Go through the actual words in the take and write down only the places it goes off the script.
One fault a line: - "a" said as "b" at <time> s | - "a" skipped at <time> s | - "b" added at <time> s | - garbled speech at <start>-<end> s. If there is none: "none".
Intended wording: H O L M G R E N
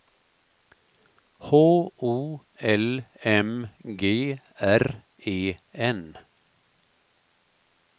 none